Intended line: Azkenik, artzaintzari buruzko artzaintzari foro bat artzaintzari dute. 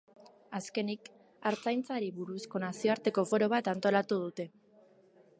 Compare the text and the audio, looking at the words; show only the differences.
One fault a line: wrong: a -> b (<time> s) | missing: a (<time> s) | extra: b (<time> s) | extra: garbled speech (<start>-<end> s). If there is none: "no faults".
wrong: artzaintzari -> nazioarteko (2.6 s)
wrong: artzaintzari -> antolatu (3.7 s)